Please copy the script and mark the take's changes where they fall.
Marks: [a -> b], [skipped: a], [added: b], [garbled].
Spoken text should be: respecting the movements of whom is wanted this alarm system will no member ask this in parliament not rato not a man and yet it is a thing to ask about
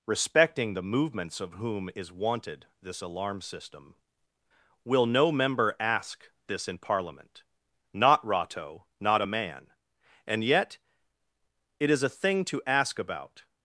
respecting the movements of whom is wanted this alarm system will no member ask this in parliament not rato not a man and yet it is a thing to ask about